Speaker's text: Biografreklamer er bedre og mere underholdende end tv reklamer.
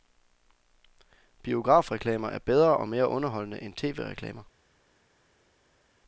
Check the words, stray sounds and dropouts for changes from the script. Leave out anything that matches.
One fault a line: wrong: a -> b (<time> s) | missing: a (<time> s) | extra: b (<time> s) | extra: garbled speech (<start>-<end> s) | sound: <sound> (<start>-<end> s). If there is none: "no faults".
no faults